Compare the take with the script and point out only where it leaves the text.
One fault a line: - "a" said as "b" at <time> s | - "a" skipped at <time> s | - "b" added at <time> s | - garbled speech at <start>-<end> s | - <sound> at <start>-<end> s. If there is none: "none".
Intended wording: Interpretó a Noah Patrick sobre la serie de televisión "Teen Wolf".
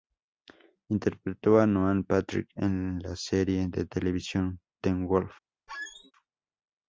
- "sobre" said as "en" at 2.5 s
- squeak at 5.7-6.1 s